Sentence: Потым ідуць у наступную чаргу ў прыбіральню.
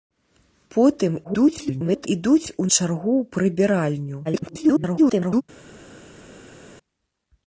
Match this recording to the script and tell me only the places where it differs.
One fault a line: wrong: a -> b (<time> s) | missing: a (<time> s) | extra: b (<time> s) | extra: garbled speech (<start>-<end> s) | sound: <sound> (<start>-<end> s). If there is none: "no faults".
extra: garbled speech (1.2-2.1 s)
missing: наступную (2.7 s)
extra: garbled speech (4.2-5.4 s)